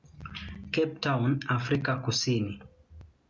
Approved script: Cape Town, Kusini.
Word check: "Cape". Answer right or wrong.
right